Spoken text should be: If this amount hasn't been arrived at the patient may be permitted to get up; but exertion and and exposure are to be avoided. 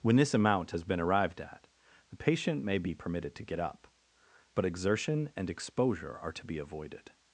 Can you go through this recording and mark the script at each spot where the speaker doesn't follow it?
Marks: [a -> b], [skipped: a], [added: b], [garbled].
[If -> When] this amount [hasn't -> has] been arrived at the patient may be permitted to get up; but exertion and [skipped: and] exposure are to be avoided.